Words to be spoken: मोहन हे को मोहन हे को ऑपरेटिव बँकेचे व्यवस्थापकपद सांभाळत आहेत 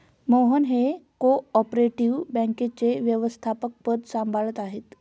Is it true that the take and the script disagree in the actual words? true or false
true